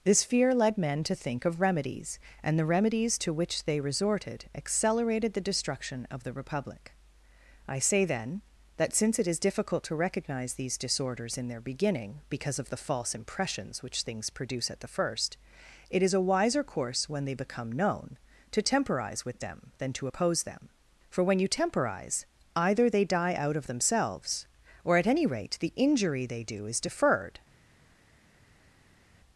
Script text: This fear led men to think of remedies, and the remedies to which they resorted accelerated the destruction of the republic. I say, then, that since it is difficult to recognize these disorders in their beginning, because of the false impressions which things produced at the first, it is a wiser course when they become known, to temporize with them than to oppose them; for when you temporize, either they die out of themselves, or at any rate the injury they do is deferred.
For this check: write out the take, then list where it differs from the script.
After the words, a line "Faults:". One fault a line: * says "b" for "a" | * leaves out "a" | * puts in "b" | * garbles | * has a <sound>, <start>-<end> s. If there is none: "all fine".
This fear led men to think of remedies, and the remedies to which they resorted accelerated the destruction of the republic. I say, then, that since it is difficult to recognize these disorders in their beginning, because of the false impressions which things produce at the first, it is a wiser course when they become known, to temporize with them than to oppose them; for when you temporize, either they die out of themselves, or at any rate the injury they do is deferred.
Faults:
* says "produce" for "produced"